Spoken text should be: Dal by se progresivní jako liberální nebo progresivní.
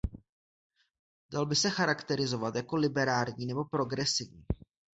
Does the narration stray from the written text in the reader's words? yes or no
yes